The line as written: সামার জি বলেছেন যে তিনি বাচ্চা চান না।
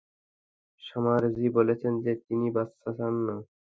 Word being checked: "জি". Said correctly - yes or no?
yes